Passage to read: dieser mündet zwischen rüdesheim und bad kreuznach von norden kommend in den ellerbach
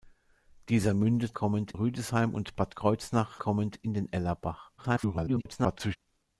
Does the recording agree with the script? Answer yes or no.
no